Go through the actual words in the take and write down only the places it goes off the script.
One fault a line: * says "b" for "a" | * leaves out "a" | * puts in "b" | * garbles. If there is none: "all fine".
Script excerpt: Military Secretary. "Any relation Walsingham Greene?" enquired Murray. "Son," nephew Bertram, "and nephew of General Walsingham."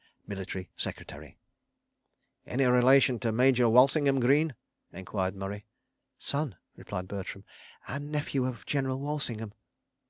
* puts in "to Major"
* says "replied" for "nephew"